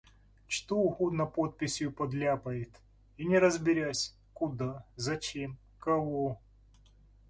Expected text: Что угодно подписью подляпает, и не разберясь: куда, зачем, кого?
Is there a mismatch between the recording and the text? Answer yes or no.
no